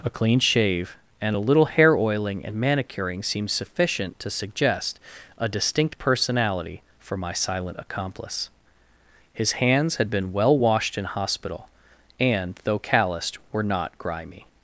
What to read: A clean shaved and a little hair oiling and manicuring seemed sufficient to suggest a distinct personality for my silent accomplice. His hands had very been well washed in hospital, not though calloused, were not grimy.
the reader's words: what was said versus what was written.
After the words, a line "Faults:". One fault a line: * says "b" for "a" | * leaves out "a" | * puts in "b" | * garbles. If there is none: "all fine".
A clean shave and a little hair oiling and manicuring seemed sufficient to suggest a distinct personality for my silent accomplice. His hands had been well washed in hospital, and though calloused, were not grimy.
Faults:
* says "shave" for "shaved"
* leaves out "very"
* says "and" for "not"